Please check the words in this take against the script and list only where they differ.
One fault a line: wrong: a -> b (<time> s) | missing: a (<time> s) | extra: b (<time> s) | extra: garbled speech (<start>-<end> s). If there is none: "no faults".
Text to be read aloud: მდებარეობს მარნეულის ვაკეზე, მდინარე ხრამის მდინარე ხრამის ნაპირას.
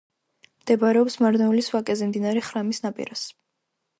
missing: მდინარე ხრამის (2.8 s)